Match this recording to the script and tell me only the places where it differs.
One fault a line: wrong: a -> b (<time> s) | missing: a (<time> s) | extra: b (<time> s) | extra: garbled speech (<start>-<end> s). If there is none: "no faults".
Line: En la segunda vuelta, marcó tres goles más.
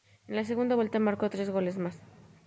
no faults